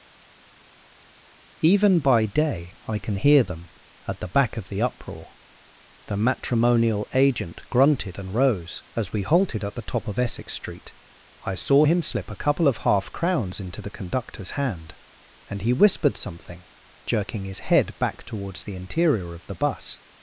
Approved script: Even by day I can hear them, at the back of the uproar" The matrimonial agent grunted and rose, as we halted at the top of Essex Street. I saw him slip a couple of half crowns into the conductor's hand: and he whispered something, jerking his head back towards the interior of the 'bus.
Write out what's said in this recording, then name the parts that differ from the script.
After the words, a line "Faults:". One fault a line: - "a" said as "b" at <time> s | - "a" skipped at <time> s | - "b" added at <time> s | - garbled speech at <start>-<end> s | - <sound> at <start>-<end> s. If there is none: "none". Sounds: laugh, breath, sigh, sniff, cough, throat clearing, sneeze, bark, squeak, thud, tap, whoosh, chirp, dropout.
Even by day I can hear them, at the back of the uproar" The matrimonial agent grunted and rose, as we halted at the top of Essex Street. I saw him slip a couple of half crowns into the conductor's hand: and he whispered something, jerking his head back towards the interior of the 'bus.
Faults:
none